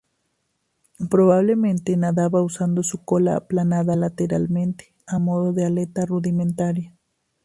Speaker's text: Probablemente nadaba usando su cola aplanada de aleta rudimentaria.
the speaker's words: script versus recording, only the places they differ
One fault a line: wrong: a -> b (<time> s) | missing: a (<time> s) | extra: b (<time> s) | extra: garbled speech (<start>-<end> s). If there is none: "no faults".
extra: lateralmente a modo (3.9 s)